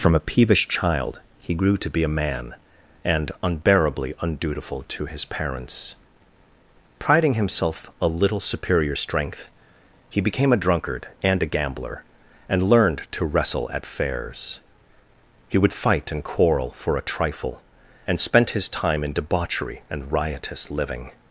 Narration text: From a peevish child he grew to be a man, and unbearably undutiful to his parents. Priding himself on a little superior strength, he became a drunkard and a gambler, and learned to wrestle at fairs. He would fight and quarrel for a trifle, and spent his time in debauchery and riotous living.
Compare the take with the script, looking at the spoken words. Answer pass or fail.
fail